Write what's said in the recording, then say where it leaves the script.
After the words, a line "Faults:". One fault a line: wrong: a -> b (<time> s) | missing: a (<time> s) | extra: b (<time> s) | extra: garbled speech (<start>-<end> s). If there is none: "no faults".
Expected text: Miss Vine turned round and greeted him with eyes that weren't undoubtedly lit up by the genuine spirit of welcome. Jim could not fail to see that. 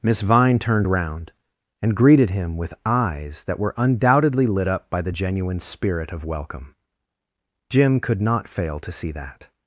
Miss Vine turned round and greeted him with eyes that were undoubtedly lit up by the genuine spirit of welcome. Jim could not fail to see that.
Faults:
wrong: weren't -> were (3.6 s)